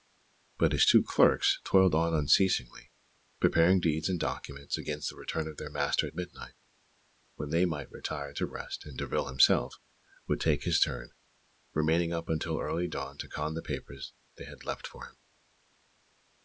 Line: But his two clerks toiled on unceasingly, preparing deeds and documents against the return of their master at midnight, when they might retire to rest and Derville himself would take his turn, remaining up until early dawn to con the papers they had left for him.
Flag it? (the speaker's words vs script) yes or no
no